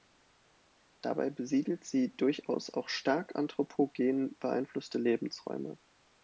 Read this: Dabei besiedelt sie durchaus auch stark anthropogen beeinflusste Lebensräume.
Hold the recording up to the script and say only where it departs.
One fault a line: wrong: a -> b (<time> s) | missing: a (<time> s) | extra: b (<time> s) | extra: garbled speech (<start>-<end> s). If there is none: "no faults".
no faults